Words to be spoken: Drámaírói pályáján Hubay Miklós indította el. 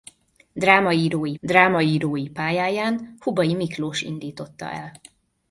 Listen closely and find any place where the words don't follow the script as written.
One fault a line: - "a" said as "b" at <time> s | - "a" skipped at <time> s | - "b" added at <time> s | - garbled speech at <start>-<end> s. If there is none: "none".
- "drámaírói" added at 1.4 s